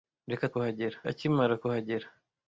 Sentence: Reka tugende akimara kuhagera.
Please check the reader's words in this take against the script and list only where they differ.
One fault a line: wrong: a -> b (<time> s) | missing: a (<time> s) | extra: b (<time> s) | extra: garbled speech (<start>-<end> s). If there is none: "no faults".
wrong: tugende -> kuhagera (0.5 s)